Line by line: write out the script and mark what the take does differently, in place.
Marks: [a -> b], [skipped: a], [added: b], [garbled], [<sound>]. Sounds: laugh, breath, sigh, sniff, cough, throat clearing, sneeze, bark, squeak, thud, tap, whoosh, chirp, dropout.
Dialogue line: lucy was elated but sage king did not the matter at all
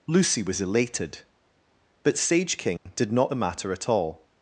lucy was elated but sage king [dropout] did not the matter at all